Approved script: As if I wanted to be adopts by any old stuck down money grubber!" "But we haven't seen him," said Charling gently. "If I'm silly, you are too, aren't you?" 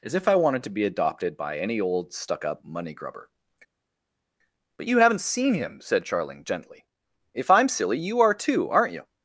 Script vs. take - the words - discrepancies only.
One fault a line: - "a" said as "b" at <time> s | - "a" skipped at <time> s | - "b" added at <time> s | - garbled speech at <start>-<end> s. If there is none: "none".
- "adopts" said as "adopted" at 0.8 s
- "down" said as "up" at 2.4 s
- "we" said as "you" at 4.8 s